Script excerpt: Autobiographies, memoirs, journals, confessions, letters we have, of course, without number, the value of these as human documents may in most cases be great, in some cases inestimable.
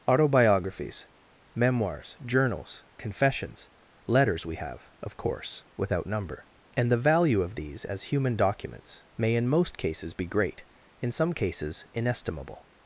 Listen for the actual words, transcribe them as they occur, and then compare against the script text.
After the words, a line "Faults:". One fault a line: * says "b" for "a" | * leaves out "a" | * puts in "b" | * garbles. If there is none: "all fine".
Autobiographies, memoirs, journals, confessions, letters we have, of course, without number, and the value of these as human documents may in most cases be great, in some cases inestimable.
Faults:
* puts in "and"